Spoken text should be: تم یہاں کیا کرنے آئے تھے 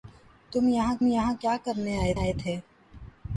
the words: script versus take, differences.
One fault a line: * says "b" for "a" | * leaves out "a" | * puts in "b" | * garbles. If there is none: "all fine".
* puts in "یہاں"
* puts in "آئے"